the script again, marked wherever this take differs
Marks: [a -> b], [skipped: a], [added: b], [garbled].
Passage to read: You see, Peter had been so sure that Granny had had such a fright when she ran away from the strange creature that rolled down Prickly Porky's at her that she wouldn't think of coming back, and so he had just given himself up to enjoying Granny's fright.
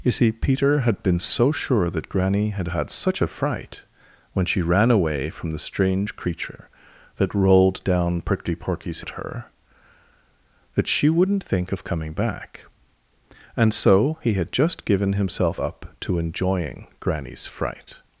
You see, Peter had been so sure that Granny had had such a fright when she ran away from the strange creature that rolled down Prickly Porky's at her that she wouldn't think of coming back, and so he had just given himself up to enjoying Granny's fright.